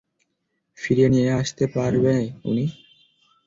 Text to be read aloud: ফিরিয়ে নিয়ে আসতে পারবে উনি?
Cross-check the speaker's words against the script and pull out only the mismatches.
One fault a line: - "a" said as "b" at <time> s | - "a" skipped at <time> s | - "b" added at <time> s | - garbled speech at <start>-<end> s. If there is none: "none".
none